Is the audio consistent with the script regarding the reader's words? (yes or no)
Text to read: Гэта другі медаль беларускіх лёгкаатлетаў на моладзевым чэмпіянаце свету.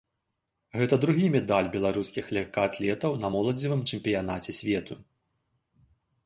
yes